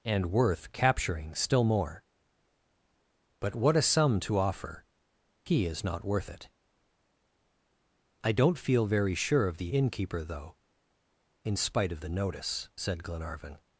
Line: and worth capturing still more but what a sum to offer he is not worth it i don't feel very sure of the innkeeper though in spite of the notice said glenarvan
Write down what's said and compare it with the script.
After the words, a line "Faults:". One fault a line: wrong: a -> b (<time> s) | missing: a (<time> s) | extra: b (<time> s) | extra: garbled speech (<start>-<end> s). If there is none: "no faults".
and worth capturing still more but what a sum to offer he is not worth it i don't feel very sure of the innkeeper though in spite of the notice said glenarvan
Faults:
no faults